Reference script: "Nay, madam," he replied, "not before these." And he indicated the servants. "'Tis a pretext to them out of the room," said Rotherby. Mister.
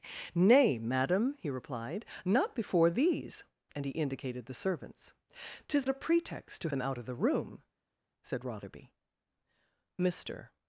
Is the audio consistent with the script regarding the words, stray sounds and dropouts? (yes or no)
yes